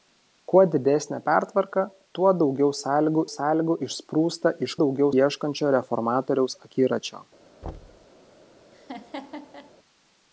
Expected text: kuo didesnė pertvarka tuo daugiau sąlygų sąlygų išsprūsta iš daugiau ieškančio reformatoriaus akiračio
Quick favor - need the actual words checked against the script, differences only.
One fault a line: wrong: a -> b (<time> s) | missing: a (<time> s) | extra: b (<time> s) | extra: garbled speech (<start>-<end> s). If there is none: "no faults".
no faults